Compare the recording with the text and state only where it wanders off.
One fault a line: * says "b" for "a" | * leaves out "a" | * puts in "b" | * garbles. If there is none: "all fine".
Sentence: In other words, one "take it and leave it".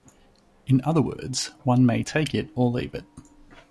* puts in "may"
* says "or" for "and"